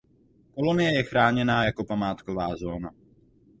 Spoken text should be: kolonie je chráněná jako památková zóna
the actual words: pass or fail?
pass